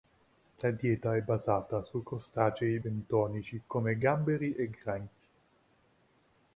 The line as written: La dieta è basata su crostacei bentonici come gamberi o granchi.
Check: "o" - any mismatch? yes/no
yes